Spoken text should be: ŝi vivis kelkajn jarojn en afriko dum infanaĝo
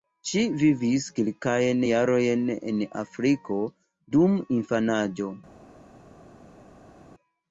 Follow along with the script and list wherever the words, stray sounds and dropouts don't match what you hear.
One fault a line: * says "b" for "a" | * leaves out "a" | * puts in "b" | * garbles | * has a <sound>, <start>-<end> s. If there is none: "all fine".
all fine